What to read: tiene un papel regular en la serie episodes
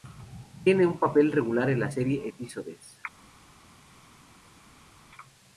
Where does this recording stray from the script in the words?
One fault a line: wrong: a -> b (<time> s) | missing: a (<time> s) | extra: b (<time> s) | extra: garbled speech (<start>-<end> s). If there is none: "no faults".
no faults